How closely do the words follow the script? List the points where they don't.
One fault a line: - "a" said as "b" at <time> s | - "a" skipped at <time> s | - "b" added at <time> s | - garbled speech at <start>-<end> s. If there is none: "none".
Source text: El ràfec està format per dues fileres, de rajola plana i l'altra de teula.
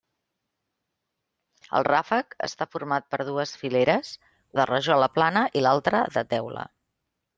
none